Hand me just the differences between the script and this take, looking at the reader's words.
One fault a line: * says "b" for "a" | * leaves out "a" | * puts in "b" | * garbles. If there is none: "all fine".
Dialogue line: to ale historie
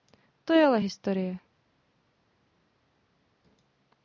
* puts in "je"